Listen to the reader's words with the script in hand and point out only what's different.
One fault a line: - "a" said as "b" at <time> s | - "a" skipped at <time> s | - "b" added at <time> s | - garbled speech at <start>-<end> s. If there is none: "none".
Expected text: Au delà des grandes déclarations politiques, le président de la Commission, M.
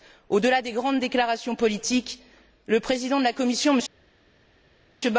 none